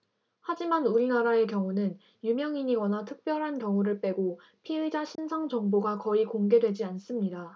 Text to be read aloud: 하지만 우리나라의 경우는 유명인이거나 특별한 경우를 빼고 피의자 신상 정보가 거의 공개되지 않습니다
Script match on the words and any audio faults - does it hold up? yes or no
no